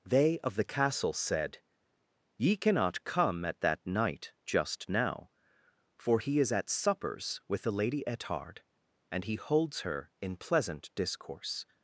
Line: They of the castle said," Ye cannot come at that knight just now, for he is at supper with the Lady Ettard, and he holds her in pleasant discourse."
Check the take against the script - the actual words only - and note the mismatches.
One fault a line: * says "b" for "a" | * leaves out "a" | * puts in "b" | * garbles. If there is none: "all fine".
* says "suppers" for "supper"